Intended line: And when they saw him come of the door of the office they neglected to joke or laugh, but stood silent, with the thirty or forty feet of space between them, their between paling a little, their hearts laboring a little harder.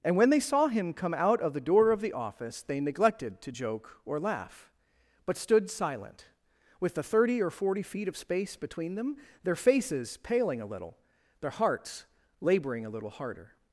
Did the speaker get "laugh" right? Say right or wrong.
right